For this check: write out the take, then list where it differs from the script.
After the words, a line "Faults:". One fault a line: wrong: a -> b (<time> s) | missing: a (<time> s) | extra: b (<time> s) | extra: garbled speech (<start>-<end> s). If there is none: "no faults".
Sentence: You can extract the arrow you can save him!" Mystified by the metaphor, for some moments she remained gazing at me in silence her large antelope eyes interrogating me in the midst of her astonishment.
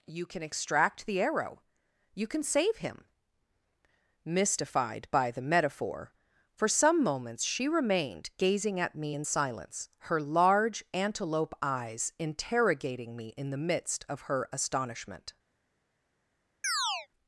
You can extract the arrow you can save him!" Mystified by the metaphor, for some moments she remained gazing at me in silence her large antelope eyes interrogating me in the midst of her astonishment.
Faults:
no faults